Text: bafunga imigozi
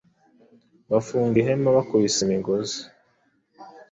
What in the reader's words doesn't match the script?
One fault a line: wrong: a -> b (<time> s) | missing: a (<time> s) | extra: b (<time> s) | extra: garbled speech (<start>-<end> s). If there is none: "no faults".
extra: ihema Bakubise (1.4 s)